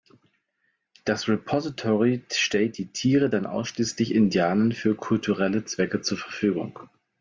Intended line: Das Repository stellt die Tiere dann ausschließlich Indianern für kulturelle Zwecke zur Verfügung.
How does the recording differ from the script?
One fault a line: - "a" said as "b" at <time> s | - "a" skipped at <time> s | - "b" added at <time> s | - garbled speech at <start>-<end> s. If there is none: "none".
none